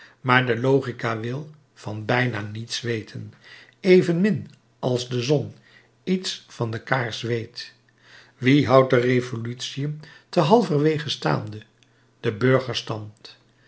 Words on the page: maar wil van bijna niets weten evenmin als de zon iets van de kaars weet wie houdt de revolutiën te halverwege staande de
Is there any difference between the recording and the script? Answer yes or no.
yes